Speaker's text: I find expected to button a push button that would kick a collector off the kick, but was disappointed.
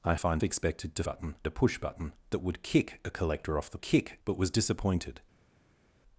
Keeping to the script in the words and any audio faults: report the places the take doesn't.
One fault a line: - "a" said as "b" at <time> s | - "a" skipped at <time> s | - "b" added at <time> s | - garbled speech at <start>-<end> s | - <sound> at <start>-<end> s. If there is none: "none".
none